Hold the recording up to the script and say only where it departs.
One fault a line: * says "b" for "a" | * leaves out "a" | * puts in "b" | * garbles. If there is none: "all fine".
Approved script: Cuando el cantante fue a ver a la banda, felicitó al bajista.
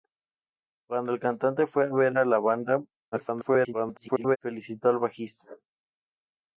* garbles